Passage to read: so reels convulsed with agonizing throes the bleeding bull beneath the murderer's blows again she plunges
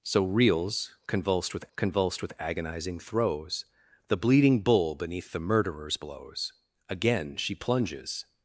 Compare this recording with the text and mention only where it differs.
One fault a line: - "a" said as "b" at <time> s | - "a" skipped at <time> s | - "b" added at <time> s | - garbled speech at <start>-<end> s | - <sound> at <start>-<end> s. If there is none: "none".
- "convulsed with" added at 1.8 s